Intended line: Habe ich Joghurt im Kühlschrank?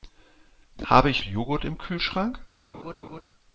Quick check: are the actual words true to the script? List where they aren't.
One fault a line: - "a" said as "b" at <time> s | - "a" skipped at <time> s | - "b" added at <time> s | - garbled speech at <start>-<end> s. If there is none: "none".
none